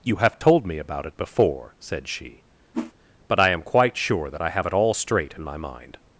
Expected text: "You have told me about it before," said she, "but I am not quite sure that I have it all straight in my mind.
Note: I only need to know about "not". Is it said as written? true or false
false